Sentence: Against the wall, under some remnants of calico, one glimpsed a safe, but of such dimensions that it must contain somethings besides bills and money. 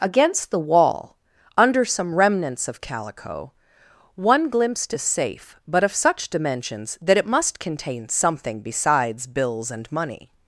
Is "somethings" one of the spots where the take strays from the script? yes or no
yes